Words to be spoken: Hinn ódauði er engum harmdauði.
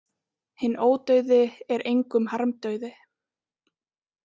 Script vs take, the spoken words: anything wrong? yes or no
no